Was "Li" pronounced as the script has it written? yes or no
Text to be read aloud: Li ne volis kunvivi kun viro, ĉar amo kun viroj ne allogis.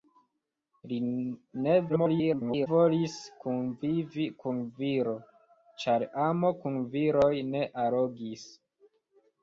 yes